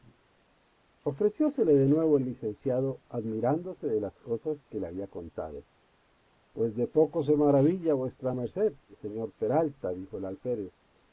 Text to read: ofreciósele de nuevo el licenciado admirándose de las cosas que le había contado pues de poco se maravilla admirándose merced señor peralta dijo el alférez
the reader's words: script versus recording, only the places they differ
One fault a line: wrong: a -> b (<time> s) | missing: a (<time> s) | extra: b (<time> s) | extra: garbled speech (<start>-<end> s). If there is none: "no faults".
wrong: admirándose -> vuesa (7.9 s)